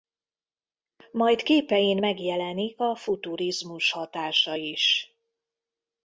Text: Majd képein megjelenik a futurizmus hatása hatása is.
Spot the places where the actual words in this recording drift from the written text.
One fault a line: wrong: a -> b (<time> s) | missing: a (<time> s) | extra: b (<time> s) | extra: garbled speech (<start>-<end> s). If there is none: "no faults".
missing: hatása (4.5 s)